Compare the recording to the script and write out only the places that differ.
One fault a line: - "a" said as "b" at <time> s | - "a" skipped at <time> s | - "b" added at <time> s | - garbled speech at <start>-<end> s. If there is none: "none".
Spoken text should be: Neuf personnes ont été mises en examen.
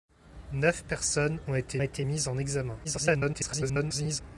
- "été" added at 1.8 s
- garbled speech at 2.8-4.2 s